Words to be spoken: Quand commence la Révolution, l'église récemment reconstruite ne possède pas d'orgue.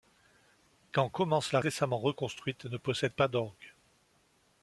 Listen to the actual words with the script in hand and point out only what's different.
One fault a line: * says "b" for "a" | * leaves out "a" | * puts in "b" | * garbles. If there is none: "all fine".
* leaves out "Révolution l'église"